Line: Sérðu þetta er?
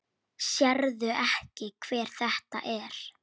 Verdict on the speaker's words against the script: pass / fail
fail